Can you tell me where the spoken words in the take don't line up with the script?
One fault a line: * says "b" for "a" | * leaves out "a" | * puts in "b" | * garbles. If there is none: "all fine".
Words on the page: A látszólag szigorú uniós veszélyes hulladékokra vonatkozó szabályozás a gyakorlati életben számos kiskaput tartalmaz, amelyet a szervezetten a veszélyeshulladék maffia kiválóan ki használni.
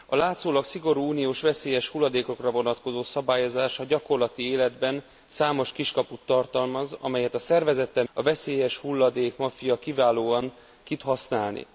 all fine